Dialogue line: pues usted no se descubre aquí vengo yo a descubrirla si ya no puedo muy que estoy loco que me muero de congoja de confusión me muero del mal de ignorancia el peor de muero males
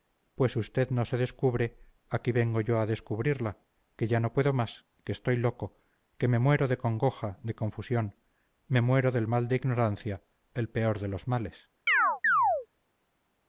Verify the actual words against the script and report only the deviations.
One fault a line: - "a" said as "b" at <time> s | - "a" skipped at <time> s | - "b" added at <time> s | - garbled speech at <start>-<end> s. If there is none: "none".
- "si" said as "que" at 4.0 s
- "muy" said as "más" at 4.5 s
- "muero" said as "los" at 11.1 s